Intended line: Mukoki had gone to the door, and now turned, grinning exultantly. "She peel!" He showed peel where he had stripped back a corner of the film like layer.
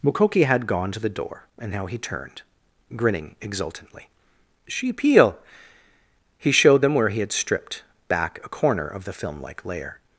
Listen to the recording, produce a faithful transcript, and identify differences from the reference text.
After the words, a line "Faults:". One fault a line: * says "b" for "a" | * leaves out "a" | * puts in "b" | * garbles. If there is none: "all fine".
Mukoki had gone to the door, and now he turned, grinning exultantly. "She peel!" He showed them where he had stripped back a corner of the film like layer.
Faults:
* puts in "he"
* says "them" for "peel"